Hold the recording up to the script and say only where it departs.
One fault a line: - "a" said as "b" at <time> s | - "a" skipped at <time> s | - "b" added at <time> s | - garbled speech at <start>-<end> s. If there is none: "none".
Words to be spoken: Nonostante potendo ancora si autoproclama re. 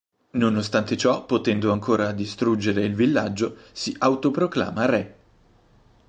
- "ciò" added at 1.0 s
- "distruggere il villaggio" added at 2.1 s